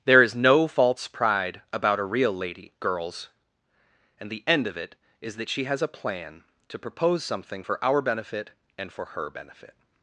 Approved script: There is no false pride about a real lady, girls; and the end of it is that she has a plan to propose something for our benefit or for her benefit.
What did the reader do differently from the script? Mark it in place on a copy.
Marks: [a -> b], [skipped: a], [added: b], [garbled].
There is no false pride about a real lady, girls; and the end of it is that she has a plan to propose something for our benefit [or -> and] for her benefit.